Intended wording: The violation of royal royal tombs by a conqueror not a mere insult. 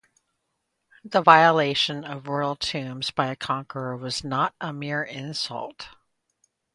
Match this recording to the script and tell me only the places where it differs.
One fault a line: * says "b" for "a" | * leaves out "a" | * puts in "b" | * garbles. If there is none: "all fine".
* leaves out "royal"
* puts in "was"